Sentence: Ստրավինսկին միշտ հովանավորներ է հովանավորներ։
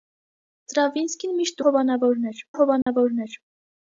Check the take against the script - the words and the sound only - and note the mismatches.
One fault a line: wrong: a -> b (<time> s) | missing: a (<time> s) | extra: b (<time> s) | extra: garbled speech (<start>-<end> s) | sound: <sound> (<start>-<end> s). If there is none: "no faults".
sound: dropout (2.8-2.9 s)